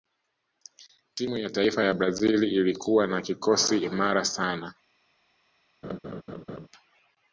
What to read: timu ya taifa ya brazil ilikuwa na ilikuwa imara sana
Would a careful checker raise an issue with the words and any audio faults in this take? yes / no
yes